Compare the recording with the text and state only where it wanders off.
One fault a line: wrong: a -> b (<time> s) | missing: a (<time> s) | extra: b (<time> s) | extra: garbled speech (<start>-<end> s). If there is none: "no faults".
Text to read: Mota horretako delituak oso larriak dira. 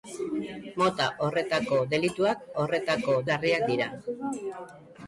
wrong: oso -> horretako (2.6 s)